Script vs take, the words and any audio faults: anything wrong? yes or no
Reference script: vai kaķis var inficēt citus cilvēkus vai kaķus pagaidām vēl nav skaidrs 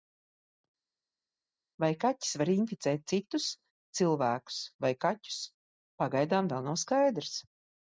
no